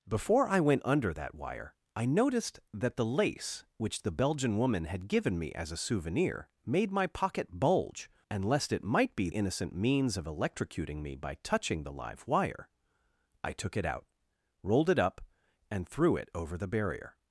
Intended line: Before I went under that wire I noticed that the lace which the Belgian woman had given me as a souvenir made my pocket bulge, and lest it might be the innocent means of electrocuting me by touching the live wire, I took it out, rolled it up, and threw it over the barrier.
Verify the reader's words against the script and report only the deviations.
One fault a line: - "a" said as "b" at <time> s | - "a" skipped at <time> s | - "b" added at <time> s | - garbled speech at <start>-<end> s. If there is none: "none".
- "the" skipped at 9.3 s